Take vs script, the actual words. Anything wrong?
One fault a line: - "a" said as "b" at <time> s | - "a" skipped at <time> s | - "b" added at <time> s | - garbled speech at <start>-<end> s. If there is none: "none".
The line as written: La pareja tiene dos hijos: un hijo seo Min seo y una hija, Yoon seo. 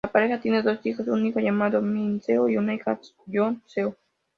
- "seo" said as "llamado" at 1.4 s